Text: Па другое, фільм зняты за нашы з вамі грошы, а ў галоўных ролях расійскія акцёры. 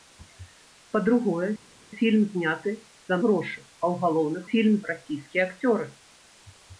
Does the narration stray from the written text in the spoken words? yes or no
yes